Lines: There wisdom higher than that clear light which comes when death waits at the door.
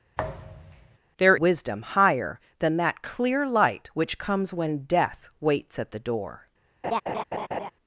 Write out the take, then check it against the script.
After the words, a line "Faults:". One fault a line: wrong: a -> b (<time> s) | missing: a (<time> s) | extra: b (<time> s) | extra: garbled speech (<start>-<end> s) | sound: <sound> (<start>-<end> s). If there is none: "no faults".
There wisdom higher than that clear light which comes when death waits at the door.
Faults:
sound: thud (0.2-1.0 s)
sound: laugh (6.8-7.7 s)